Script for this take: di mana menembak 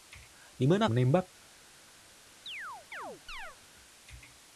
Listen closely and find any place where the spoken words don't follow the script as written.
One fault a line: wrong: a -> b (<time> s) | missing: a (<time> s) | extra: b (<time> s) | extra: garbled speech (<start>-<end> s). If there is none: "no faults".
no faults